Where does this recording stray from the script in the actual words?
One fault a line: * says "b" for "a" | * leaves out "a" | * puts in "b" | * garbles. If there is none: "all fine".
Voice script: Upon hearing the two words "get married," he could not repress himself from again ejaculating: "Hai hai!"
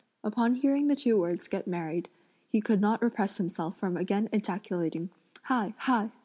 all fine